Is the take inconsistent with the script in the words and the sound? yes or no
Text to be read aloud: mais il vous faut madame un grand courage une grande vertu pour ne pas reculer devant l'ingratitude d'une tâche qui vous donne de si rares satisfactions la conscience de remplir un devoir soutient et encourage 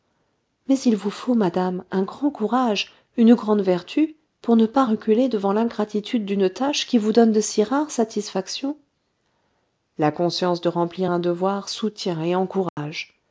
yes